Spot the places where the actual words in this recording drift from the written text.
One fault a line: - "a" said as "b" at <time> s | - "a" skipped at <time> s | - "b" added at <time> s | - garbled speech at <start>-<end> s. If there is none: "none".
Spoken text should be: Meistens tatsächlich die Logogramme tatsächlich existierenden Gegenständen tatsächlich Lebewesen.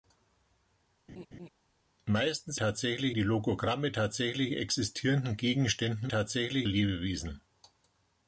none